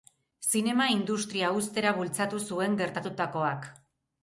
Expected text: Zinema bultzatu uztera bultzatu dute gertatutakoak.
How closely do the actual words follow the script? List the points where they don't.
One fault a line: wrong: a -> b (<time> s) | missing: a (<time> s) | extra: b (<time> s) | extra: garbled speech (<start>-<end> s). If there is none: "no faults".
wrong: bultzatu -> industria (0.9 s)
wrong: dute -> zuen (2.5 s)